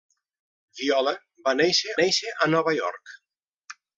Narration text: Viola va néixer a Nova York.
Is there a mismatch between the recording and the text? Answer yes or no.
yes